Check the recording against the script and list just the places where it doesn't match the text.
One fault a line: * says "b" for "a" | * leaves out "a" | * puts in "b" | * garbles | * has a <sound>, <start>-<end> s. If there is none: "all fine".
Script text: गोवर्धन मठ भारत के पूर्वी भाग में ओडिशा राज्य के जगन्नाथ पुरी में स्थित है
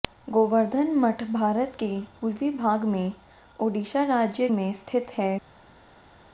* leaves out "के जगन्नाथ पुरी"